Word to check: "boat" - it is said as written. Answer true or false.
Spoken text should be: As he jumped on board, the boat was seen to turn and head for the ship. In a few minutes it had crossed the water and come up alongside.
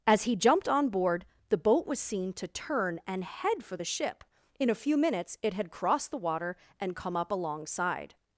true